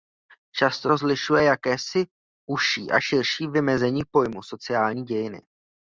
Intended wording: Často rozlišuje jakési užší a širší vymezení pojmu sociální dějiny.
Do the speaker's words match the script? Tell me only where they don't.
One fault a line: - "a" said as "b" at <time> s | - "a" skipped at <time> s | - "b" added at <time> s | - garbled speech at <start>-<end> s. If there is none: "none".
none